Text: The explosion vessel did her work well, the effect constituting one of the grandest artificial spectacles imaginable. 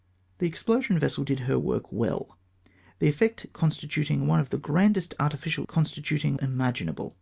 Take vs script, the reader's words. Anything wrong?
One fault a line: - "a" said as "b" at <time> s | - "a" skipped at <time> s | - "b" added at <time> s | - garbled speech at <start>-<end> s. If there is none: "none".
- "spectacles" said as "constituting" at 5.7 s